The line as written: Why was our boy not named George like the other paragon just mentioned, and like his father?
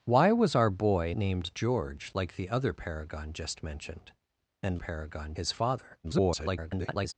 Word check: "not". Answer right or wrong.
wrong